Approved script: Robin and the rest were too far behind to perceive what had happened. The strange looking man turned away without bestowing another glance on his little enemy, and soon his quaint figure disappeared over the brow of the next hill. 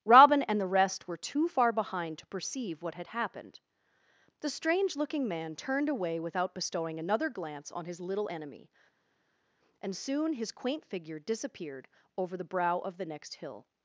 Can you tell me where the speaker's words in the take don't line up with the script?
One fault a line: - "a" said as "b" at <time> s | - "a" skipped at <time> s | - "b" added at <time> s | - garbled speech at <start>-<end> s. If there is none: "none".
none